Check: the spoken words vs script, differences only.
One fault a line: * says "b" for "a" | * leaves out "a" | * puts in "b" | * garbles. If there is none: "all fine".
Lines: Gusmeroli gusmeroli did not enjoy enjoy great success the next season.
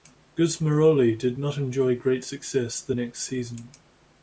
* leaves out "gusmeroli"
* leaves out "enjoy"